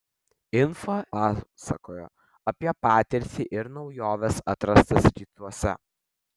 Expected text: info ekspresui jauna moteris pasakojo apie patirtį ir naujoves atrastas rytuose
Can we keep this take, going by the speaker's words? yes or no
no